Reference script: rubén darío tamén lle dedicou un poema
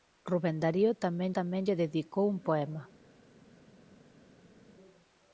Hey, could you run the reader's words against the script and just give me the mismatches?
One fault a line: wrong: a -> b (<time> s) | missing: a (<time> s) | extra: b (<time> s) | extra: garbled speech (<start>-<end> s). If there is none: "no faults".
extra: tamén (1.4 s)